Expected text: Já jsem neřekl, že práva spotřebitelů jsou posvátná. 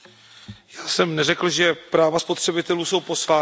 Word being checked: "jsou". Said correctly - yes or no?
yes